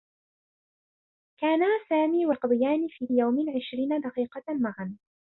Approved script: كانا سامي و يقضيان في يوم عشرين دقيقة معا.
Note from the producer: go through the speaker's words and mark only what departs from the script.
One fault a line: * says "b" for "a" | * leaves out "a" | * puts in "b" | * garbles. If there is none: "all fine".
all fine